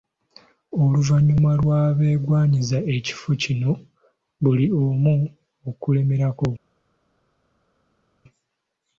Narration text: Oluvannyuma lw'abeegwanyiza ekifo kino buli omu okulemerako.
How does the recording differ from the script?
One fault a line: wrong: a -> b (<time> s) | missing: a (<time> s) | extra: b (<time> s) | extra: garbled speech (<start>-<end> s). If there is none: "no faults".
no faults